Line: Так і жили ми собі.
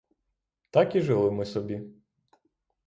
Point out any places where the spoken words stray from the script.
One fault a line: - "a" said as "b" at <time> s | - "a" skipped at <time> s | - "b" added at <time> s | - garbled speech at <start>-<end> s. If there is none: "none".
none